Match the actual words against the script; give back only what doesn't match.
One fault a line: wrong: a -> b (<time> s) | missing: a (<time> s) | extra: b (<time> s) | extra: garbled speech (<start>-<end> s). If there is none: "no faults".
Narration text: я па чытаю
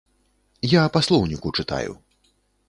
extra: слоўніку (1.1 s)